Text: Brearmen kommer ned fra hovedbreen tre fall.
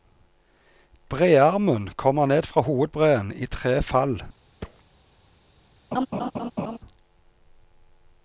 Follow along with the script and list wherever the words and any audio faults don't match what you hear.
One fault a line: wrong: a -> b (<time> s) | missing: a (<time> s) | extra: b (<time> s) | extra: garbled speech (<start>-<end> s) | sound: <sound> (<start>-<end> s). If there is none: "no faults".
extra: i (3.4 s)
sound: thud (4.6-4.8 s)
sound: laugh (5.9-6.8 s)